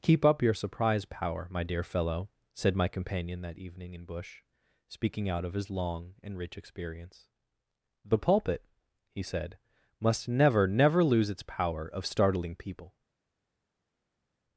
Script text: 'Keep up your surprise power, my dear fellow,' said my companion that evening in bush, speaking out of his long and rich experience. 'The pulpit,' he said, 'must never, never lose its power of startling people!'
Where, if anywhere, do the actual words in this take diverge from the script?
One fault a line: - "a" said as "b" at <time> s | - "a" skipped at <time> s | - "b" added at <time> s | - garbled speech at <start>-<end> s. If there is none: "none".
none